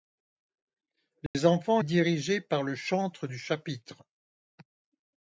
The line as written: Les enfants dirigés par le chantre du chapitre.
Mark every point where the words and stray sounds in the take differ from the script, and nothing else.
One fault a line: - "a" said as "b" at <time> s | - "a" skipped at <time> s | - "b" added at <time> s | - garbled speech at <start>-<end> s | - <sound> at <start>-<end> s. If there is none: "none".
- dropout at 1.3-1.3 s